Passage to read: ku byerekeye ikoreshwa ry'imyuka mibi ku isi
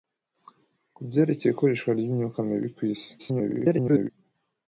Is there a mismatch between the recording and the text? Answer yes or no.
yes